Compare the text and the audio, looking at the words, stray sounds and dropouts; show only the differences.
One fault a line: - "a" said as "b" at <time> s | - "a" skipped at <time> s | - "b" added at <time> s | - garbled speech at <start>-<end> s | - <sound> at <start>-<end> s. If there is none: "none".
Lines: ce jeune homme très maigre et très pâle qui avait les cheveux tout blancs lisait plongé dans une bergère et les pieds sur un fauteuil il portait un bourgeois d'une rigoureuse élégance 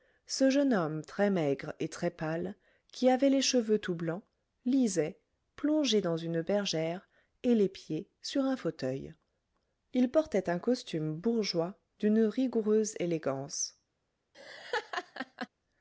- "costume" added at 10.6 s
- laugh at 14.3-15.5 s